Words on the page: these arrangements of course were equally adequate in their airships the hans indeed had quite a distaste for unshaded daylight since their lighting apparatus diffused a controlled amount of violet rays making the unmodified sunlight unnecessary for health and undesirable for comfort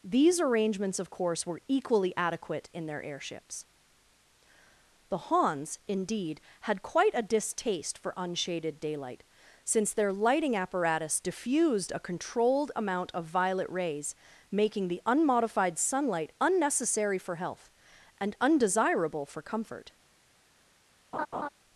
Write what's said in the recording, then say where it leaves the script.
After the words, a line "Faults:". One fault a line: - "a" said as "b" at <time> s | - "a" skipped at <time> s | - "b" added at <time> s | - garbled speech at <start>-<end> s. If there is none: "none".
these arrangements of course were equally adequate in their airships the hans indeed had quite a distaste for unshaded daylight since their lighting apparatus diffused a controlled amount of violet rays making the unmodified sunlight unnecessary for health and undesirable for comfort
Faults:
none